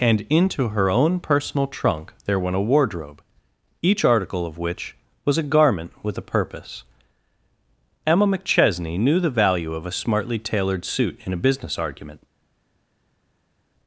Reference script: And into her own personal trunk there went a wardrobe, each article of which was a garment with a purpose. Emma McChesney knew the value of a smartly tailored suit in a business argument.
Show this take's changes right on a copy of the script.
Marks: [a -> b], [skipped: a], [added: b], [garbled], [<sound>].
And into her own personal trunk there went a wardrobe, each article of which was a garment with a purpose. Emma McChesney knew the value of a smartly tailored suit in a business argument.